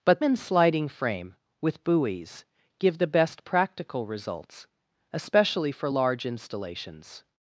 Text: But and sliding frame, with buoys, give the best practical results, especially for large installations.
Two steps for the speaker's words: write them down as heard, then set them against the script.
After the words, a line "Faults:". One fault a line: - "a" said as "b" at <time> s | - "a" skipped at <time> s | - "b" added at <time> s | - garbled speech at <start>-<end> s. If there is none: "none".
But and sliding frame, with buoys, give the best practical results, especially for large installations.
Faults:
none